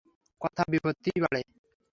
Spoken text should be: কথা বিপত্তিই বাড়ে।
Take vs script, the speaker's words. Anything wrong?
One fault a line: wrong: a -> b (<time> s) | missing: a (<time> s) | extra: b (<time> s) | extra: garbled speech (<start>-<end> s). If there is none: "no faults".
no faults